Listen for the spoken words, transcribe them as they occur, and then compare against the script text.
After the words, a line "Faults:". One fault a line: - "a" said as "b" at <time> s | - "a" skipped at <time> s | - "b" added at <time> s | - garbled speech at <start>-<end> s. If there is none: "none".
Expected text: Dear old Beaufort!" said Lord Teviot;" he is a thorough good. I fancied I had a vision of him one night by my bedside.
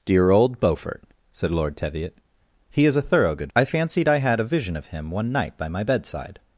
Dear old Beaufort!" said Lord Teviot;" he is a thorough good. I fancied I had a vision of him one night by my bedside.
Faults:
none